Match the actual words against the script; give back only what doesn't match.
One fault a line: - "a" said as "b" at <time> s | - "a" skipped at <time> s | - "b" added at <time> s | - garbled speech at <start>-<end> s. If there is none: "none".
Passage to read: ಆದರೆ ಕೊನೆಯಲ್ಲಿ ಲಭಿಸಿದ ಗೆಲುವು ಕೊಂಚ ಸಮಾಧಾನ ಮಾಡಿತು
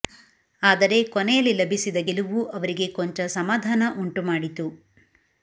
- "ಅವರಿಗೆ" added at 2.5 s
- "ಉಂಟು" added at 4.0 s